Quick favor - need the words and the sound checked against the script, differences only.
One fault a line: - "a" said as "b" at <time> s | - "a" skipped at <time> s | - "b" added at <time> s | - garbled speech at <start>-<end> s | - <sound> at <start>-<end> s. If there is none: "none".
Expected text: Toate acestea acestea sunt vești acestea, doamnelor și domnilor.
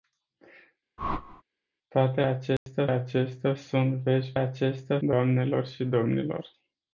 - whoosh at 1.0-1.4 s
- dropout at 2.6-2.7 s